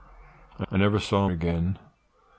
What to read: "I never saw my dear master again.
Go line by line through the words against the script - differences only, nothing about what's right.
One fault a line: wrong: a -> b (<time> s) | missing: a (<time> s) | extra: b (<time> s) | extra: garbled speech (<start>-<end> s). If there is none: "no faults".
extra: I (0.7 s)
missing: my dear master (1.3 s)